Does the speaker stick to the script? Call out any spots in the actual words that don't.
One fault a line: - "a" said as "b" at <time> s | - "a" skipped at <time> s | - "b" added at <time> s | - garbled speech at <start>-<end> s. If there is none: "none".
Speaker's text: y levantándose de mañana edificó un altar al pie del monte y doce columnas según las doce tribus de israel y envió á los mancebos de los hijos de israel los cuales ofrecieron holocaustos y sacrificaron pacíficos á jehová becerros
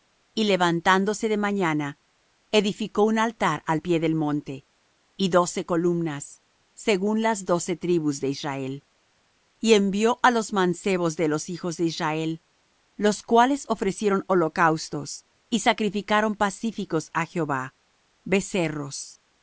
none